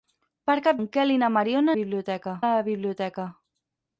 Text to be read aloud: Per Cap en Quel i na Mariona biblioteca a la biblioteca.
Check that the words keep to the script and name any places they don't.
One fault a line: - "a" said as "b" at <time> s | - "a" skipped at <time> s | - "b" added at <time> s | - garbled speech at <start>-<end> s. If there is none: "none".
none